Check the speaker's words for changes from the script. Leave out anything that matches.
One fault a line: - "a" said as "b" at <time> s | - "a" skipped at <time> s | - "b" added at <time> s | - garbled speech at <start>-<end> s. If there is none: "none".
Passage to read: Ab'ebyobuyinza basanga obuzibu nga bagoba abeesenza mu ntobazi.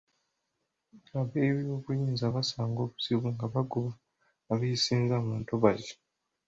none